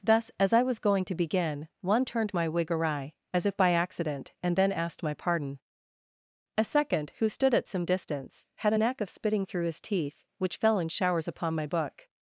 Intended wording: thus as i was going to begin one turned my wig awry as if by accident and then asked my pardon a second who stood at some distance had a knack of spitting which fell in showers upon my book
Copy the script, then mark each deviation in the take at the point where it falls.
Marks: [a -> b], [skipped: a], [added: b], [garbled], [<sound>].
thus as i was going to begin one turned my wig awry as if by accident and then asked my pardon a second who stood at some distance had a knack of spitting [added: through his teeth] which fell in showers upon my book